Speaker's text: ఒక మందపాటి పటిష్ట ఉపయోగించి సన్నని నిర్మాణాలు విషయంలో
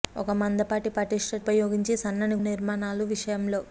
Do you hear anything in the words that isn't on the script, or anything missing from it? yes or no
no